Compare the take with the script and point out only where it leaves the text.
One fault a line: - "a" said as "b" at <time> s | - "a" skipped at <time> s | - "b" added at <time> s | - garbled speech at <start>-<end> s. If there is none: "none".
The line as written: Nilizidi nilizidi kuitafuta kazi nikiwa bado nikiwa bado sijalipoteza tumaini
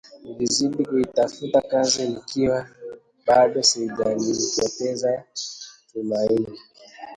- "nilizidi" skipped at 0.8 s
- "nikiwa bado" skipped at 3.6 s